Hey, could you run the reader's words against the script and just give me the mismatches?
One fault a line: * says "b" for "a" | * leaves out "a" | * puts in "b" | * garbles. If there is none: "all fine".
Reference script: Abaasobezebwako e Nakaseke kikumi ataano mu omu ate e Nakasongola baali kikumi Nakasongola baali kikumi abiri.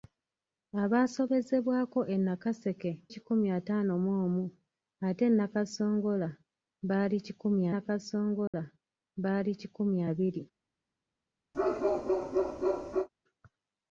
all fine